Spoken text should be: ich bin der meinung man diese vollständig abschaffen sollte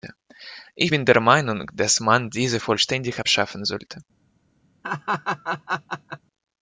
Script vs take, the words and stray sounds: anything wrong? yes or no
yes